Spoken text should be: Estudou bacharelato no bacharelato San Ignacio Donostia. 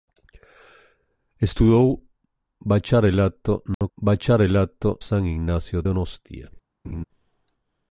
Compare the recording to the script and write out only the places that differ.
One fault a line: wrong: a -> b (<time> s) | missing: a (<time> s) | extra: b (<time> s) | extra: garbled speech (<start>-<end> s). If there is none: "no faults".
no faults